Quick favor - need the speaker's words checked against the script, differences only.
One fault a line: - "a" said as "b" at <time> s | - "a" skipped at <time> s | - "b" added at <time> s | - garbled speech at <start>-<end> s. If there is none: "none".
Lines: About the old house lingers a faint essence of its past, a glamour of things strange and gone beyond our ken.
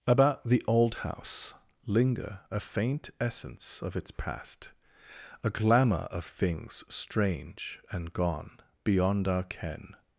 - "lingers" said as "linger" at 1.9 s